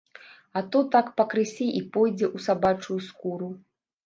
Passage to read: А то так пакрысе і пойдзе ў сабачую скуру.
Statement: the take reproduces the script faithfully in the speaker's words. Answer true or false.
true